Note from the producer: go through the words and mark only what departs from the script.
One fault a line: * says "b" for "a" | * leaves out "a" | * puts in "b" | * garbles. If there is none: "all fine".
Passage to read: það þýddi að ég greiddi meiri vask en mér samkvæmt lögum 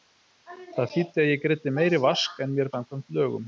all fine